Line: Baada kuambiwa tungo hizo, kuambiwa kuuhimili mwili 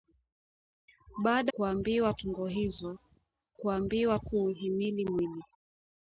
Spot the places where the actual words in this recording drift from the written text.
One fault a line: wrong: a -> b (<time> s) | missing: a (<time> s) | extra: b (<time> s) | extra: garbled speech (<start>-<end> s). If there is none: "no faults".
no faults